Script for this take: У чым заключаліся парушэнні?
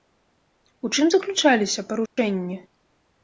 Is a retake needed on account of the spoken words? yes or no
no